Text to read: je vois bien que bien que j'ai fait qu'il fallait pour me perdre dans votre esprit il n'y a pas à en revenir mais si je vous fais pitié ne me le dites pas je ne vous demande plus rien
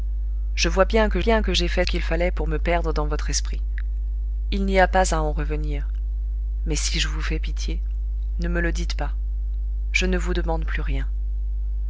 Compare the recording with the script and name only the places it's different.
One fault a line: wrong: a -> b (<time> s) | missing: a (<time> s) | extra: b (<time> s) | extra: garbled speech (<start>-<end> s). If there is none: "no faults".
no faults